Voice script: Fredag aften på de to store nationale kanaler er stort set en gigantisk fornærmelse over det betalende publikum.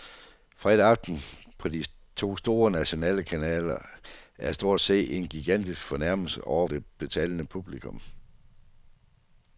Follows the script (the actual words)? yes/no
yes